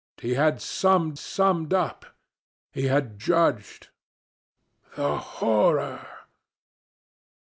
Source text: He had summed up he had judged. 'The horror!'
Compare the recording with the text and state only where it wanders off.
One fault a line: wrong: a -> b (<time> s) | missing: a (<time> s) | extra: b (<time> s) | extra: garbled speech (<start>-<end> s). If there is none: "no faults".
extra: summed (1.2 s)